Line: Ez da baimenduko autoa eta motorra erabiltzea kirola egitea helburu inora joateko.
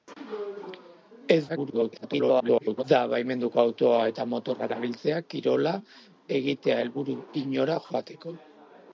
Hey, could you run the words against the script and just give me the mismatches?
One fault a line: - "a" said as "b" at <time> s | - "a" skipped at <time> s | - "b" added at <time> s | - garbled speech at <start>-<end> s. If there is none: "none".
- garbled speech at 1.5-2.8 s